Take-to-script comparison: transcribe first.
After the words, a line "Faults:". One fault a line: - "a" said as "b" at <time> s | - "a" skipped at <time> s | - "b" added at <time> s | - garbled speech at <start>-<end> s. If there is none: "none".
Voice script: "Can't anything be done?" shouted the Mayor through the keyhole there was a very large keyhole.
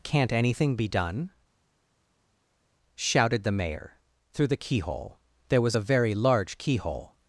"Can't anything be done?" shouted the Mayor through the keyhole there was a very large keyhole.
Faults:
none